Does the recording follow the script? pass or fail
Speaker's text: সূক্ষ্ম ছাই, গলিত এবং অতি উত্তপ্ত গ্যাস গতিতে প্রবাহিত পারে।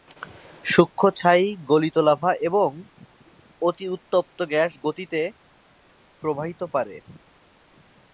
fail